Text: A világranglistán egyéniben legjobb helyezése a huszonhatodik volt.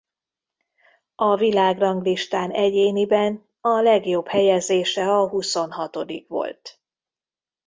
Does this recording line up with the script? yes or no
no